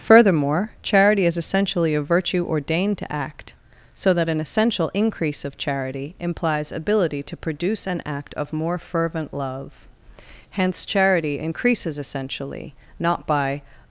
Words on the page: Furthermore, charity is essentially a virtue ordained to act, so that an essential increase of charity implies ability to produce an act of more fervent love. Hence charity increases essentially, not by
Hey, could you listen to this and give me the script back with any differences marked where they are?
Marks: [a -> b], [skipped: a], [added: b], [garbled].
Furthermore, charity is essentially a virtue ordained to act, so that an essential increase of charity implies ability to produce an act of more fervent love. Hence charity increases essentially, not by